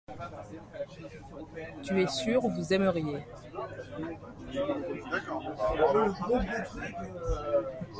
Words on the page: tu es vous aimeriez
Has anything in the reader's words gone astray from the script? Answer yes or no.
yes